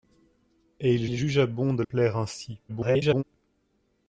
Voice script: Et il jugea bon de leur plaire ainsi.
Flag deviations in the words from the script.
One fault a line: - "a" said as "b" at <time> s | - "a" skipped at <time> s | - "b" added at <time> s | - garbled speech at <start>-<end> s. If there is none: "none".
- "il" added at 1.1 s
- "leur" skipped at 1.8 s
- garbled speech at 2.7-3.2 s